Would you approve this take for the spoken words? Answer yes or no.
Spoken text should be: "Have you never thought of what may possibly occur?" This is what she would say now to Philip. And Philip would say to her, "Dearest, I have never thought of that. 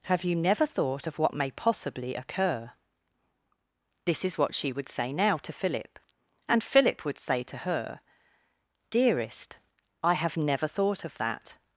yes